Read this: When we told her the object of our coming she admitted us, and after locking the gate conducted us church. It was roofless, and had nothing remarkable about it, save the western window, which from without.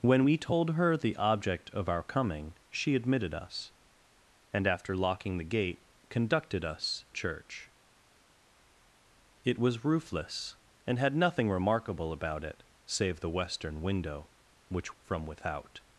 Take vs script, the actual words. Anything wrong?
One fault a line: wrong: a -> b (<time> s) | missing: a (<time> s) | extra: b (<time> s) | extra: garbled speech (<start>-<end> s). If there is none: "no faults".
no faults